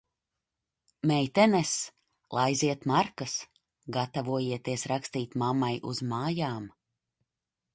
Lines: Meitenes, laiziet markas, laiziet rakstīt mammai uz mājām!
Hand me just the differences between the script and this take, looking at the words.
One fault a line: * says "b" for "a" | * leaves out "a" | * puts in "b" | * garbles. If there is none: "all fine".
* says "gatavojieties" for "laiziet"